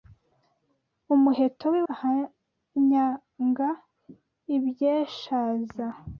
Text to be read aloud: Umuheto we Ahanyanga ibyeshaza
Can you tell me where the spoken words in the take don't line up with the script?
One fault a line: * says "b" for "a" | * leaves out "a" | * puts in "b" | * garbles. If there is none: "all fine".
all fine